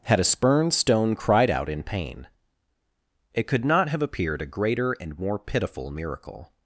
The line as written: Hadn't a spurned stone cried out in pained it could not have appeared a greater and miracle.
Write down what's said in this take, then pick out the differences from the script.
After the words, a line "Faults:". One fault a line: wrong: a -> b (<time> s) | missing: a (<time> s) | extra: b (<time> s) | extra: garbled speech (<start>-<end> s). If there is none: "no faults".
Had a spurned stone cried out in pain it could not have appeared a greater and more pitiful miracle.
Faults:
wrong: Hadn't -> Had (0.0 s)
wrong: pained -> pain (1.8 s)
extra: more pitiful (5.2 s)